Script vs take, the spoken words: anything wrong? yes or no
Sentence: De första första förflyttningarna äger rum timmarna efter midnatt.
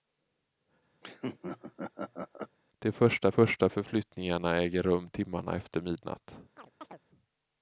no